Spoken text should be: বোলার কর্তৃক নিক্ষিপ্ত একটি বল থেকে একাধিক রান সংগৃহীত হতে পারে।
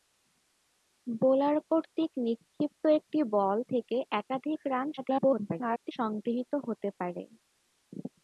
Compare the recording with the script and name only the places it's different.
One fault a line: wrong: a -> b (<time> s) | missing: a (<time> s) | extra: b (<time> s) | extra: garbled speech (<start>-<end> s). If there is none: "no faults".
extra: garbled speech (5.0-5.9 s)